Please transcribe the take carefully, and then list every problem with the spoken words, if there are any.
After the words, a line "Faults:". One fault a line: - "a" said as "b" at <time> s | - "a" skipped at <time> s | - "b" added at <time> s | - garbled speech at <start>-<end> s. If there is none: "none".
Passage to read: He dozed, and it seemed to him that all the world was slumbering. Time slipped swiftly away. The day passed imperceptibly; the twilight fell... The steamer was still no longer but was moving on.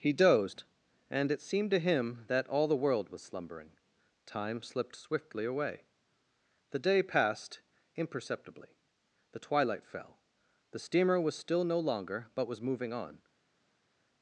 He dozed, and it seemed to him that all the world was slumbering. Time slipped swiftly away. The day passed imperceptibly; the twilight fell... The steamer was still no longer but was moving on.
Faults:
none